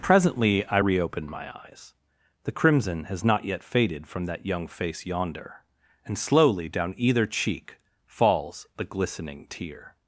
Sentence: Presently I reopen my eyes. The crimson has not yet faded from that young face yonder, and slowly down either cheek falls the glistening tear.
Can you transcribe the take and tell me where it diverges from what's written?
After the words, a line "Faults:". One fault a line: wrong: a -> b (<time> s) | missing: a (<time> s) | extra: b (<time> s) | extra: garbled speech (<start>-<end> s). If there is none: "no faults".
Presently I reopen my eyes. The crimson has not yet faded from that young face yonder, and slowly down either cheek falls the glistening tear.
Faults:
no faults